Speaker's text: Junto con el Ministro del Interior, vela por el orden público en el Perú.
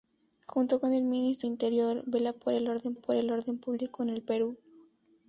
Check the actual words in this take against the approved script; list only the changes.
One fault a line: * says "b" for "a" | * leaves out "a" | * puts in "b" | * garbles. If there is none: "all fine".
* leaves out "del"
* puts in "por el orden"